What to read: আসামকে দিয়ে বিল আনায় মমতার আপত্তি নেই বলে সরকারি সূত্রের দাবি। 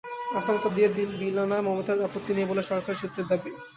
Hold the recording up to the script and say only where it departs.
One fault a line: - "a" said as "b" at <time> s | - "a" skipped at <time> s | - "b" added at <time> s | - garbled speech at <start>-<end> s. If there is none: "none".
none